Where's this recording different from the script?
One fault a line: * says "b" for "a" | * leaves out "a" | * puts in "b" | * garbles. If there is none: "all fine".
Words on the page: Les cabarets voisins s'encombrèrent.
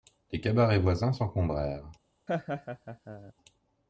all fine